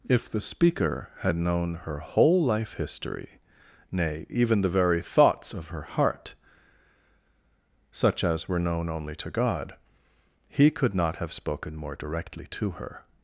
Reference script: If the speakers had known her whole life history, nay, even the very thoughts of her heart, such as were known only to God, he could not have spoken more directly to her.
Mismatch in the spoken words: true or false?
true